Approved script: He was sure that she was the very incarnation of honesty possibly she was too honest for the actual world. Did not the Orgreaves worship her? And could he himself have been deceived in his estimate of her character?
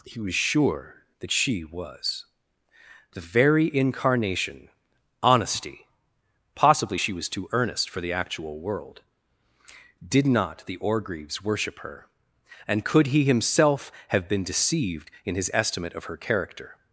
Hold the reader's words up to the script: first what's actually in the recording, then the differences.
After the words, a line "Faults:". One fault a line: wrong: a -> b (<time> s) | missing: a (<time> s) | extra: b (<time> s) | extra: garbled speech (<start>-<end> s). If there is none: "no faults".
He was sure that she was the very incarnation honesty possibly she was too earnest for the actual world. Did not the Orgreaves worship her? And could he himself have been deceived in his estimate of her character?
Faults:
missing: of (4.7 s)
wrong: honest -> earnest (7.5 s)